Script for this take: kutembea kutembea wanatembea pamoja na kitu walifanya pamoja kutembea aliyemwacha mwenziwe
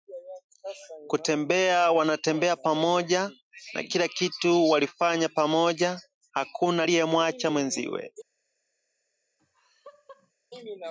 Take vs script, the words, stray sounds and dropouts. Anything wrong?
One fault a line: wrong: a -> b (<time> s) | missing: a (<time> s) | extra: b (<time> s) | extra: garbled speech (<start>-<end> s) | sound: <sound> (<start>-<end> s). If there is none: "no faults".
missing: kutembea (1.9 s)
extra: kila (3.8 s)
wrong: kutembea -> hakuna (6.3 s)
sound: laugh (9.4-10.3 s)